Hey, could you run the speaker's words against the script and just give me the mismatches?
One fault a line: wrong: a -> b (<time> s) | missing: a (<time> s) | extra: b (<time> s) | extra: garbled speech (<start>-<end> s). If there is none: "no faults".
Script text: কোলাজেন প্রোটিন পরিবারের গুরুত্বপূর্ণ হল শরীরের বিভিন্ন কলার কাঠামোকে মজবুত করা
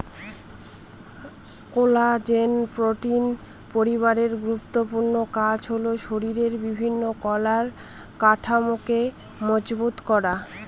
extra: কাজ (5.3 s)